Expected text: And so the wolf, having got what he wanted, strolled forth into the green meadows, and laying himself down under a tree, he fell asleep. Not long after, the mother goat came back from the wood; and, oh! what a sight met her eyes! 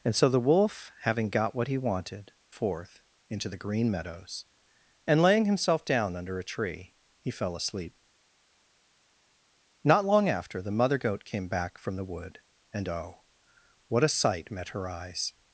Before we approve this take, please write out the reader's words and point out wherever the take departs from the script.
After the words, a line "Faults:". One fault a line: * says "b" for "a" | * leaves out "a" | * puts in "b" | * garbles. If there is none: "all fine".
And so the wolf, having got what he wanted, forth into the green meadows, and laying himself down under a tree, he fell asleep. Not long after, the mother goat came back from the wood; and, oh! what a sight met her eyes!
Faults:
* leaves out "strolled"